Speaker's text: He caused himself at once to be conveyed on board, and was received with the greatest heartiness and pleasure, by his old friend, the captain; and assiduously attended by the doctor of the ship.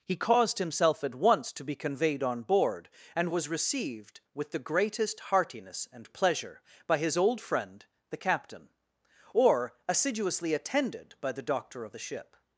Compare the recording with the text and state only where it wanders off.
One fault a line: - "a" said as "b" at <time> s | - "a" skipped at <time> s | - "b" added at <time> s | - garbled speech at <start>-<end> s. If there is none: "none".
- "and" said as "or" at 9.3 s